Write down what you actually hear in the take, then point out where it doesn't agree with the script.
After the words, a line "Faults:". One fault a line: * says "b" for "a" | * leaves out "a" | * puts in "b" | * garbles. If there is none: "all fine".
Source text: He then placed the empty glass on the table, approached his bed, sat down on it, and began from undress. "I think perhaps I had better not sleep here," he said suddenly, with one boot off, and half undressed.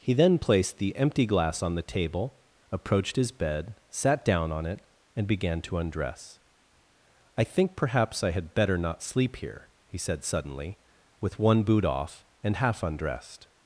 He then placed the empty glass on the table, approached his bed, sat down on it, and began to undress. "I think perhaps I had better not sleep here," he said suddenly, with one boot off, and half undressed.
Faults:
* says "to" for "from"